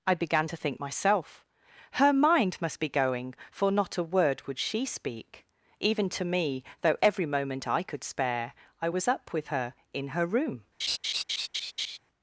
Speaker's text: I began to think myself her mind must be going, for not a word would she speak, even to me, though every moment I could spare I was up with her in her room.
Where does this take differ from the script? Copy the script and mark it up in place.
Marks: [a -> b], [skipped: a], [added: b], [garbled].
I began to think myself her mind must be going, for not a word would she speak, even to me, though every moment I could spare I was up with her in her room.